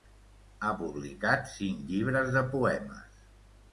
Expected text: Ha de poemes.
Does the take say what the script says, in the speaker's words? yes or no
no